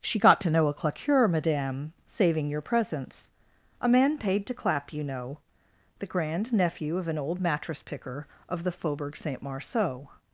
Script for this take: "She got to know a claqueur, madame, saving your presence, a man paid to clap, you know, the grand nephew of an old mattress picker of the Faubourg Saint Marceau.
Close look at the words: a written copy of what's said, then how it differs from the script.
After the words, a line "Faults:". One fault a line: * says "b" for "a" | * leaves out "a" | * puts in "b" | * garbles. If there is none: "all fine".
"She got to know a claqueur, madame, saving your presence, a man paid to clap, you know, the grand nephew of an old mattress picker of the Faubourg Saint Marceau.
Faults:
all fine